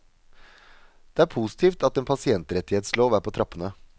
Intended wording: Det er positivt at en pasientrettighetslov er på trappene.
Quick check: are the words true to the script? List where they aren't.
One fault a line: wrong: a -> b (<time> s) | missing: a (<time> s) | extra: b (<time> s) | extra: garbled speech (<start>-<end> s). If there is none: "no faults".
no faults